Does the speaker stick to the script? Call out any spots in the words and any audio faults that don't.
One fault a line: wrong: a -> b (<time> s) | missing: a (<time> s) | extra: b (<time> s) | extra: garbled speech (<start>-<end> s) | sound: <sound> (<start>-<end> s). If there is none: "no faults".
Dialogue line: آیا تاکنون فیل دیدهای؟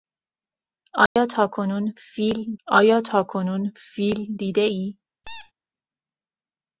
sound: dropout (1.1-1.2 s)
extra: آیا تاکنون فیل (2.7 s)
sound: squeak (5.2-5.5 s)